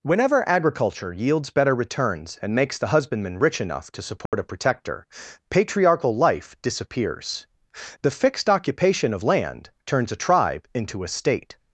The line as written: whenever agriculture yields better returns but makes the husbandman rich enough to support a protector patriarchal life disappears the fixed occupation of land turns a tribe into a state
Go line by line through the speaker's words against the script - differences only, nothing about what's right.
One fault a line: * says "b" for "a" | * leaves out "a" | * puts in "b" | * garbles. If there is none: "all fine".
* says "and" for "but"